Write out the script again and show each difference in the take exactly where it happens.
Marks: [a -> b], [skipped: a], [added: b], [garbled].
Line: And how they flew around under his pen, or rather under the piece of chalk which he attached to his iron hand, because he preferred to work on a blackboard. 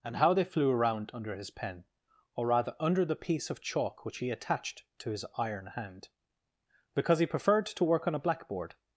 And how they flew around under his pen, or rather under the piece of chalk which he attached to his iron hand, because he preferred to work on a blackboard.